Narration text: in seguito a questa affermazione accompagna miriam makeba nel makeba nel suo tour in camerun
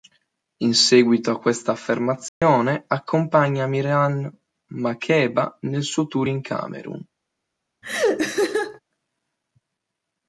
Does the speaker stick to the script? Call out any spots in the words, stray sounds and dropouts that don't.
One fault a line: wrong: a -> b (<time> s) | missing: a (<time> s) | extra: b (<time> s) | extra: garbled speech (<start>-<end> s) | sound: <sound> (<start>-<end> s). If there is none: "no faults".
sound: dropout (2.3-2.4 s)
missing: makeba nel (5.8 s)
sound: laugh (7.8-8.8 s)